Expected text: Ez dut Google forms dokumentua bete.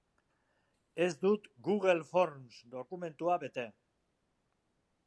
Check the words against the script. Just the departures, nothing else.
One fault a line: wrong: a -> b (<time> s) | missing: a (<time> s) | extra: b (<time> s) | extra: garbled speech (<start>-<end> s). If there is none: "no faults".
no faults